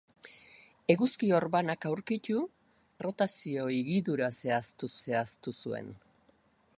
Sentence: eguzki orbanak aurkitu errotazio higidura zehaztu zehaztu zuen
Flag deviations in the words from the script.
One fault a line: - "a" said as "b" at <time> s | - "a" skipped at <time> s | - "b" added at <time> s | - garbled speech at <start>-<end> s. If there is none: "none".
none